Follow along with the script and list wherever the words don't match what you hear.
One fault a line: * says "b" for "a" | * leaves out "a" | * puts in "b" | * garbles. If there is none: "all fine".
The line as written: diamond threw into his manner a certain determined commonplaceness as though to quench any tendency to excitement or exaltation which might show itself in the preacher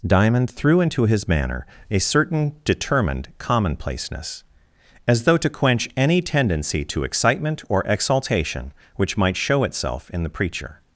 all fine